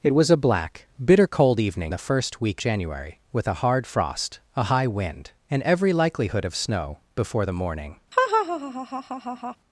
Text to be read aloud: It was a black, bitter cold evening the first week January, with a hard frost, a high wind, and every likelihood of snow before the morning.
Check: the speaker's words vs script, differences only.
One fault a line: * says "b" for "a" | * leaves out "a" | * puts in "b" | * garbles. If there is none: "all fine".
all fine